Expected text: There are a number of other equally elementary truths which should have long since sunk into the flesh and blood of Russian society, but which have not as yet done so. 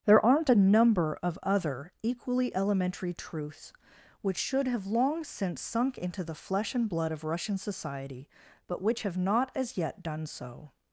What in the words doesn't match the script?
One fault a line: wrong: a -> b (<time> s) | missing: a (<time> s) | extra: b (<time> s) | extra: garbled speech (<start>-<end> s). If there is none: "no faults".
wrong: are -> aren't (0.2 s)